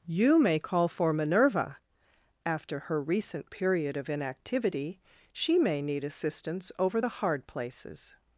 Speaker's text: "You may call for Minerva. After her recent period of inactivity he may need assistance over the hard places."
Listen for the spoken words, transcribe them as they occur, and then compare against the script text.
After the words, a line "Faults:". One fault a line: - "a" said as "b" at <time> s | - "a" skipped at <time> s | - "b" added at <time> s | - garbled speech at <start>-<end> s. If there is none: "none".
"You may call for Minerva. After her recent period of inactivity she may need assistance over the hard places."
Faults:
- "he" said as "she" at 5.3 s